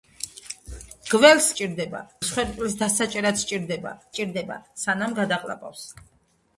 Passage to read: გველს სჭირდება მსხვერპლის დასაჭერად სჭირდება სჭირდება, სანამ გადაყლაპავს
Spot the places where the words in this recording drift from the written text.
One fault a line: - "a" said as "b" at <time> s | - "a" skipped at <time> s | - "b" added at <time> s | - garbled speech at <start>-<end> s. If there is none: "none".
none